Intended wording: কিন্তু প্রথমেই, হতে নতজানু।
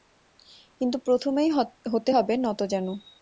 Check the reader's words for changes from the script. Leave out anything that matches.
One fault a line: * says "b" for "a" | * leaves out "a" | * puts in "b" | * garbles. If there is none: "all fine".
* puts in "হবে"